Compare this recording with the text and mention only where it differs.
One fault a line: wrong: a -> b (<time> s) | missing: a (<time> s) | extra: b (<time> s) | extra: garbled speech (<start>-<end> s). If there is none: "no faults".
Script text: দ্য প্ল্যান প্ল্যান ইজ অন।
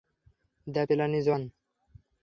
missing: প্ল্যান (1.1 s)